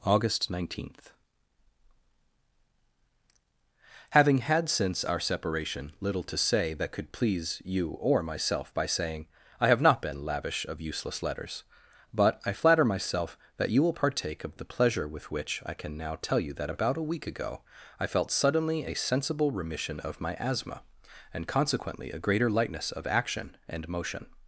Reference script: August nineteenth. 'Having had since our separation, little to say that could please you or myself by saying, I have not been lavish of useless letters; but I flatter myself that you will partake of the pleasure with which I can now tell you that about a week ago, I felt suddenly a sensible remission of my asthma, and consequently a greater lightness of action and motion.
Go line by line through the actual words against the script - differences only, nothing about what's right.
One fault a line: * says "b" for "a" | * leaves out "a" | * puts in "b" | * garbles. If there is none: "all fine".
all fine